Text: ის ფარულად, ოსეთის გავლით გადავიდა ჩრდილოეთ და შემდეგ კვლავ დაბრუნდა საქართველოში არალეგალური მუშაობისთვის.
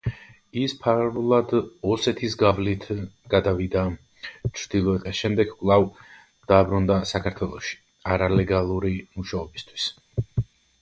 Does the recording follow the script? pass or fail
pass